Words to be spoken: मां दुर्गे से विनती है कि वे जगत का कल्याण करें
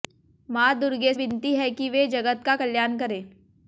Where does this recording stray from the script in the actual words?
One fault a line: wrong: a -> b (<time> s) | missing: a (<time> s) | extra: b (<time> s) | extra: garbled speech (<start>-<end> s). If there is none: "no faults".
missing: से (1.1 s)